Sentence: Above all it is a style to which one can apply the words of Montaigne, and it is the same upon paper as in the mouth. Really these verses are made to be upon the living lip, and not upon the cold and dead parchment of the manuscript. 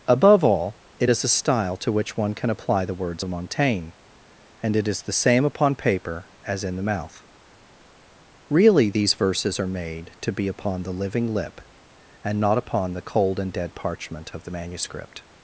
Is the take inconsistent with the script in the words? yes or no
no